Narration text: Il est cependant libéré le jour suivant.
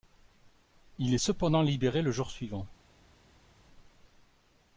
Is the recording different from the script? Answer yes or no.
no